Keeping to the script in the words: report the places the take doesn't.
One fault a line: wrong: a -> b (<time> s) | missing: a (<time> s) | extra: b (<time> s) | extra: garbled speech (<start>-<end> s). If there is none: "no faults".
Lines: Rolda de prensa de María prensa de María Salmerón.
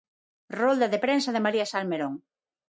missing: prensa de María (1.6 s)